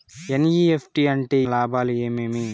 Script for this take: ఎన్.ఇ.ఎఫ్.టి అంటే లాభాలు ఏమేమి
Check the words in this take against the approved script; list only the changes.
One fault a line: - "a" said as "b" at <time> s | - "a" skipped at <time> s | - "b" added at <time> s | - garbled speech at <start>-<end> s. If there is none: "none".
none